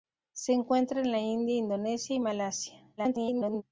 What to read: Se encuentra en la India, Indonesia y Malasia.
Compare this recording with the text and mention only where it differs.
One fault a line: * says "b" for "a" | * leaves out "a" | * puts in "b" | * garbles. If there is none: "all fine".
* garbles